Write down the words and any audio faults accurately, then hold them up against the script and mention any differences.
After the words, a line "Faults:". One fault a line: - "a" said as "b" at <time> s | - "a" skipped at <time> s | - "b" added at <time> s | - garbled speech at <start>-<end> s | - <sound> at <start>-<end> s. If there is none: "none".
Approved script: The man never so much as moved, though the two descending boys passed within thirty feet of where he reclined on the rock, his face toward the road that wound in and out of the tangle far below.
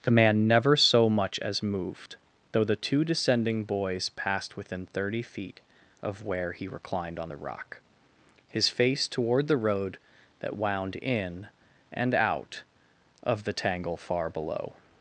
The man never so much as moved, though the two descending boys passed within thirty feet of where he reclined on the rock, his face toward the road that wound in and out of the tangle far below.
Faults:
none